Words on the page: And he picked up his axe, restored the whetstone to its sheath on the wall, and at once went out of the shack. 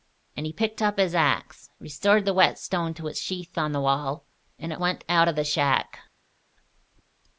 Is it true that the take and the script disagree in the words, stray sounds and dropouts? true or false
true